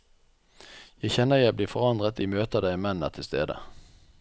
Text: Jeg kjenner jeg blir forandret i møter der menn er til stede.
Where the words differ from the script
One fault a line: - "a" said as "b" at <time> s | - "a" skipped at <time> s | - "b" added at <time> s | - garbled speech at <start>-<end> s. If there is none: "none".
none